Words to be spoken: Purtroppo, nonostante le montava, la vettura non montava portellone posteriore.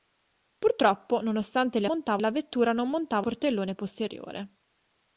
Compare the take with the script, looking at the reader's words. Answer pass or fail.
pass